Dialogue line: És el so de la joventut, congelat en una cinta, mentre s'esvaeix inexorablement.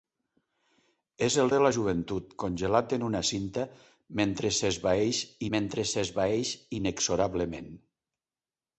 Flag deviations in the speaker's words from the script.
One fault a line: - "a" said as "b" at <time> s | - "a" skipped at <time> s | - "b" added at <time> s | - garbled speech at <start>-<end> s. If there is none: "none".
- "so" skipped at 1.5 s
- "mentre s'esvaeix" added at 5.6 s